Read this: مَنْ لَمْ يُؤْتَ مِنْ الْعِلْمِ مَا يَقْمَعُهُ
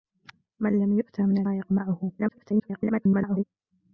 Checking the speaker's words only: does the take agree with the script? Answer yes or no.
no